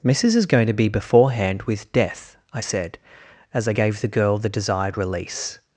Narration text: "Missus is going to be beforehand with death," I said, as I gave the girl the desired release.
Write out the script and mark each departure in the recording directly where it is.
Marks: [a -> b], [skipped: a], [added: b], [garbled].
"Missus is going to be beforehand with death," I said, as I gave the girl the desired release.